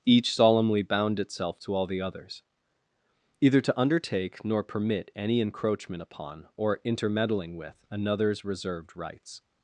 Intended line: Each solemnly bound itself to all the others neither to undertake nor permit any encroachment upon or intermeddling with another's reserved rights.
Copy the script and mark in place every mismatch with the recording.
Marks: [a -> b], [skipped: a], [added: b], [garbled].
Each solemnly bound itself to all the others [neither -> either] to undertake nor permit any encroachment upon or intermeddling with another's reserved rights.